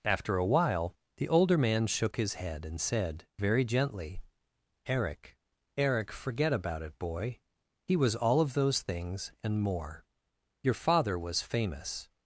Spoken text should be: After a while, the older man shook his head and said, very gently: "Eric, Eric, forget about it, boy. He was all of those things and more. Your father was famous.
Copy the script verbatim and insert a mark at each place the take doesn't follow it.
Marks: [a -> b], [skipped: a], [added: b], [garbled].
After a while, the older man shook his head and said, very gently: "Eric, Eric, forget about it, boy. He was all of those things and more. Your father was famous.